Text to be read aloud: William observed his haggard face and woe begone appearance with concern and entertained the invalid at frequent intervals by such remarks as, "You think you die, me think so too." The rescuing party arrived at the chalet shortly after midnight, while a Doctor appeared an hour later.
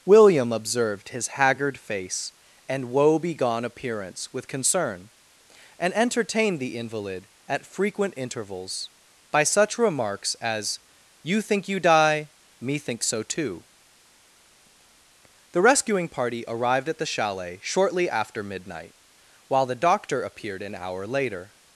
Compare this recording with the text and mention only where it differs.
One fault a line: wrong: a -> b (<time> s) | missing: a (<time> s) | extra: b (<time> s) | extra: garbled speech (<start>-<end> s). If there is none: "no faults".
wrong: a -> the (19.6 s)